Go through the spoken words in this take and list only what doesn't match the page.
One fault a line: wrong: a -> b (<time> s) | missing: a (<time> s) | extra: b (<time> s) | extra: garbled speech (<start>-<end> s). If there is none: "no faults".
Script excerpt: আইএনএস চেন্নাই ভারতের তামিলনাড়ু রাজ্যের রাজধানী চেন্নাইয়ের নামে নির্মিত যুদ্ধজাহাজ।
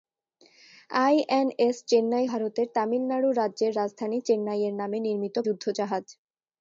no faults